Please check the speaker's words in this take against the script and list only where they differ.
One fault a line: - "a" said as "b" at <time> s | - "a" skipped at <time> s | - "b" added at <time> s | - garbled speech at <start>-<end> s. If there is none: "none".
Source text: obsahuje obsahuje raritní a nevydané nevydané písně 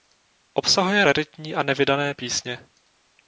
- "obsahuje" skipped at 1.1 s
- "nevydané" skipped at 2.1 s